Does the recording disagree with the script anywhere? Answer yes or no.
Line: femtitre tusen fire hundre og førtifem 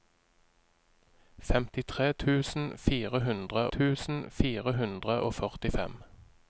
yes